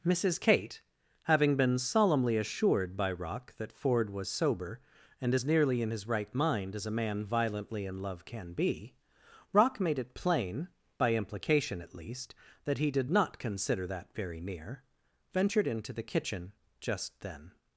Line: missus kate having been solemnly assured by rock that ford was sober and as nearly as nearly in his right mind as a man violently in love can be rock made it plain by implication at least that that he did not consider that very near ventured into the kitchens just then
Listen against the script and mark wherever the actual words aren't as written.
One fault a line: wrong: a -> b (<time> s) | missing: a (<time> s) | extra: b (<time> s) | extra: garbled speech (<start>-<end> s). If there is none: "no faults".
missing: as nearly (5.8 s)
missing: that (12.8 s)
wrong: kitchens -> kitchen (16.0 s)